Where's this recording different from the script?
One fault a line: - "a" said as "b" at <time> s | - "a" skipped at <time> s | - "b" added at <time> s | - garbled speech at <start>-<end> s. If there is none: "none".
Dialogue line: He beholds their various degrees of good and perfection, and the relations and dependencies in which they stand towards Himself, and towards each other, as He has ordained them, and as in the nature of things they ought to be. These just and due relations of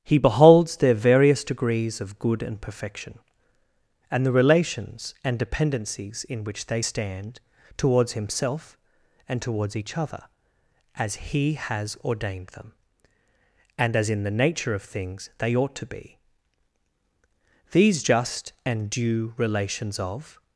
none